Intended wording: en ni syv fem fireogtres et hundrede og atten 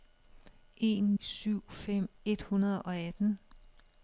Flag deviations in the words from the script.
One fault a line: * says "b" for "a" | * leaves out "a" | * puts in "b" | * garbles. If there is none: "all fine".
* leaves out "ni"
* leaves out "fireogtres"